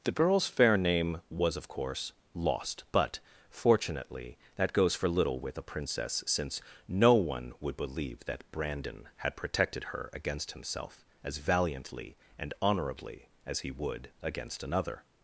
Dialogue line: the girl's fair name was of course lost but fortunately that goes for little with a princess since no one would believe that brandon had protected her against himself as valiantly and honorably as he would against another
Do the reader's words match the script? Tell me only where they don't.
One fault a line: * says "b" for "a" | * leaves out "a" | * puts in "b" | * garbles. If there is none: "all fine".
all fine